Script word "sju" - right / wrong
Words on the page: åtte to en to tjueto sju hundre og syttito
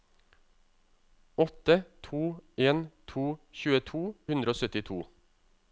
wrong